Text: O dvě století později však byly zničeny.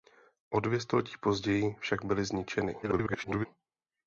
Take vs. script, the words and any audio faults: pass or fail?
fail